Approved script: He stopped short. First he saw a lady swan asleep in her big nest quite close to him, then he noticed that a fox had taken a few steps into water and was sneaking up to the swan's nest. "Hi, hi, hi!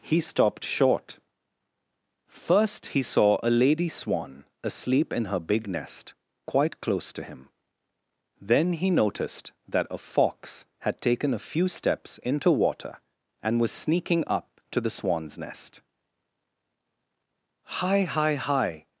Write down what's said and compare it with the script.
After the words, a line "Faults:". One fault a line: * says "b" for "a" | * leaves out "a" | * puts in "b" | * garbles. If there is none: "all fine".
He stopped short. First he saw a lady swan asleep in her big nest quite close to him, then he noticed that a fox had taken a few steps into water and was sneaking up to the swan's nest. "Hi, hi, hi!
Faults:
all fine